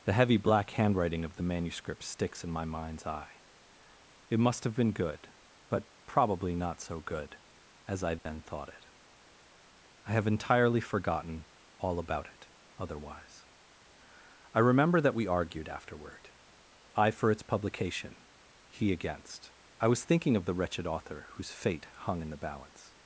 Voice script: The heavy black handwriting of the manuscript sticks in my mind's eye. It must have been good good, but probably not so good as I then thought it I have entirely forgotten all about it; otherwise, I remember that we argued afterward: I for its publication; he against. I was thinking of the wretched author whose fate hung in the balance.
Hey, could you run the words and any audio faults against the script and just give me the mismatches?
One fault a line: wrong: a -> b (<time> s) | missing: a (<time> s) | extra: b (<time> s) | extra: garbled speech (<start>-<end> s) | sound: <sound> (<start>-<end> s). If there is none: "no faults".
missing: good (5.3 s)
sound: dropout (8.2-8.3 s)